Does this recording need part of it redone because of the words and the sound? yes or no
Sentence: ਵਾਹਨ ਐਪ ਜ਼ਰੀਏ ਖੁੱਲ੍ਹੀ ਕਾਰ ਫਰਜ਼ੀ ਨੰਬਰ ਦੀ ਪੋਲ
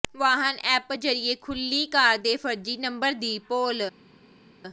yes